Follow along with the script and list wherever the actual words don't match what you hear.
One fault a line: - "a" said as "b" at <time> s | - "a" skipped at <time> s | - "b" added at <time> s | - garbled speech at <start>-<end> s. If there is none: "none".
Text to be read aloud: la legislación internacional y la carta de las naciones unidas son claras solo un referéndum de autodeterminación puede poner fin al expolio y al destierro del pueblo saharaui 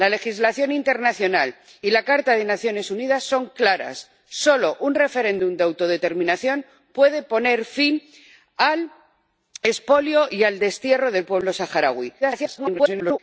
- garbled speech at 12.2-13.2 s